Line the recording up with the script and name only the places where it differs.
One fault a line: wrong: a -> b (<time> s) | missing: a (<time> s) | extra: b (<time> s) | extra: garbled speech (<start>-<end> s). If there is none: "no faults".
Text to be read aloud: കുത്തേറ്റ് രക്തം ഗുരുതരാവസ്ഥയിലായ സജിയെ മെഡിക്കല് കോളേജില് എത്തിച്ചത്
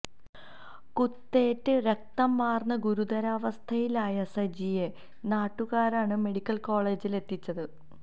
extra: വാര്ന്ന് (2.4 s)
extra: നാട്ടുകാരാണ് (5.3 s)